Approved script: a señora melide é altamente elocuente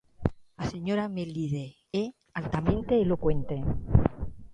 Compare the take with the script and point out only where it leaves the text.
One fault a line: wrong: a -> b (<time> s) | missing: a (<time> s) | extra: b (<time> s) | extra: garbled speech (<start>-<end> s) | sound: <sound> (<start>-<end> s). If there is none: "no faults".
no faults